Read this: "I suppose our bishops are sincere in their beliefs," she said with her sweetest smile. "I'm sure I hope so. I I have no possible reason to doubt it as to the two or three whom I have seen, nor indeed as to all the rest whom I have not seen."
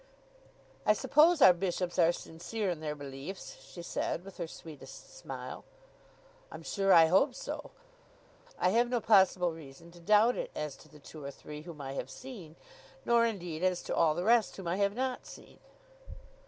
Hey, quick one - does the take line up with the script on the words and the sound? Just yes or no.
no